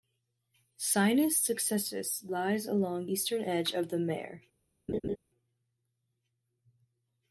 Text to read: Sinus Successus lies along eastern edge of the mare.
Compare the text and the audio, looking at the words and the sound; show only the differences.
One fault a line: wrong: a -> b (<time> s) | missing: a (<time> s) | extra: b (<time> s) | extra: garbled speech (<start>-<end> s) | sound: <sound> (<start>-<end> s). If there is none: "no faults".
sound: laugh (4.9-5.2 s)